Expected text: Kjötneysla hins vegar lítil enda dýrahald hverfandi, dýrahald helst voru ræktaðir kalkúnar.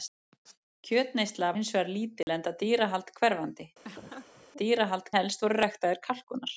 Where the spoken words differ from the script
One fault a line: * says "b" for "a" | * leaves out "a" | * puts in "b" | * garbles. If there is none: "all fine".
all fine